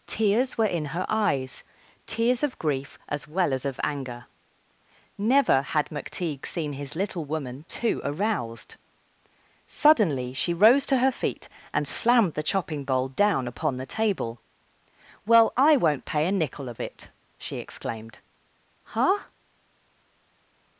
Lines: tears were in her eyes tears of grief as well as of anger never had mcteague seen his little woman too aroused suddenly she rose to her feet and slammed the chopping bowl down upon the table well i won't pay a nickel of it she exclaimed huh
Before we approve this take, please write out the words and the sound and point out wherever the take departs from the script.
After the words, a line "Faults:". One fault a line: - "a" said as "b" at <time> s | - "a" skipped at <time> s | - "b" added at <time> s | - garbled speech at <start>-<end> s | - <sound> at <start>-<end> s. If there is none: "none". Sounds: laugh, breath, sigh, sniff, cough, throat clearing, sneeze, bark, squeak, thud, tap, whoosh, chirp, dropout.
tears were in her eyes tears of grief as well as of anger never had mcteague seen his little woman too aroused suddenly she rose to her feet and slammed the chopping bowl down upon the table well i won't pay a nickel of it she exclaimed huh
Faults:
none